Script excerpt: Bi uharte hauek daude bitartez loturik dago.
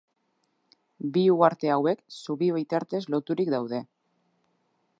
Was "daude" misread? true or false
true